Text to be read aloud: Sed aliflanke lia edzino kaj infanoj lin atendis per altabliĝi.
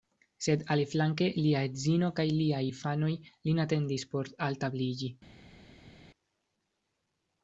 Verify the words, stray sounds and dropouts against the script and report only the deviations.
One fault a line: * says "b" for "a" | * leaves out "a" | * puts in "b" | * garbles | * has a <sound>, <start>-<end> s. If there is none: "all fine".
* puts in "liaj"
* says "por" for "per"